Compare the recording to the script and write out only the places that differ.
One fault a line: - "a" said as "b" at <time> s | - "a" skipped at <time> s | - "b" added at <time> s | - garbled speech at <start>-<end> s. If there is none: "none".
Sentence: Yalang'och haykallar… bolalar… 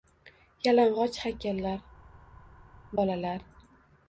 none